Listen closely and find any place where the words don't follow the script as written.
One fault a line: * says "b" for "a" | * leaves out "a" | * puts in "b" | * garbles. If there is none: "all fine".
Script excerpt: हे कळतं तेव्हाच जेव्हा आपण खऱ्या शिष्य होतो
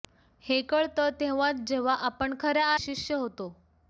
all fine